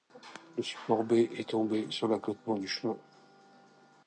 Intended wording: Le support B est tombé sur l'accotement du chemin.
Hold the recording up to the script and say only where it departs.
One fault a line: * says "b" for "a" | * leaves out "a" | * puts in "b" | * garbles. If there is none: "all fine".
all fine